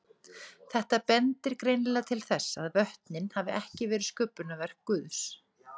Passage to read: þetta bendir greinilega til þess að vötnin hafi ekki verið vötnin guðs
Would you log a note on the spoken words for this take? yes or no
yes